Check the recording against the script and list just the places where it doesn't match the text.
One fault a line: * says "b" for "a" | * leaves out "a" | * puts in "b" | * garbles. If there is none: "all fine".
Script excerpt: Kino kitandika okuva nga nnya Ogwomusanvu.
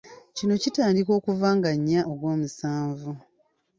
all fine